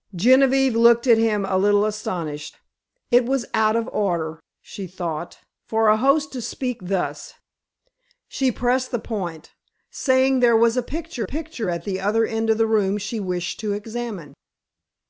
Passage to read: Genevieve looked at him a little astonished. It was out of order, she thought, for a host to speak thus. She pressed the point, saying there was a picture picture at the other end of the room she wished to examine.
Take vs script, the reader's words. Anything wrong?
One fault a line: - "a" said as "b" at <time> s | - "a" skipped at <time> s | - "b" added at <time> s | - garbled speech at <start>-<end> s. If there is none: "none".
none